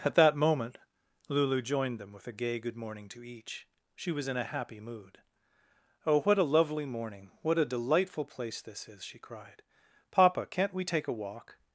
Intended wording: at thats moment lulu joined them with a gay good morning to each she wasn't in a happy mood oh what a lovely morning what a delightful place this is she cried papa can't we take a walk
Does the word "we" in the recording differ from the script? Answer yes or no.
no